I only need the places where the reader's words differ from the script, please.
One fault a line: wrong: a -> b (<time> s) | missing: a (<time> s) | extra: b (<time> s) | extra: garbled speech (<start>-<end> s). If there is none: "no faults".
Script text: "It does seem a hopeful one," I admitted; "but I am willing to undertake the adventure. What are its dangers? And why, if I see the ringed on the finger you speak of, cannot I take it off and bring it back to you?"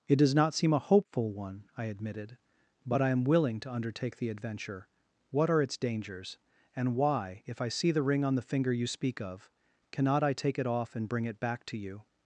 extra: not (0.3 s)
wrong: ringed -> ring (8.0 s)